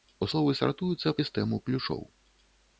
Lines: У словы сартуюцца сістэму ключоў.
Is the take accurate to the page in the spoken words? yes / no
yes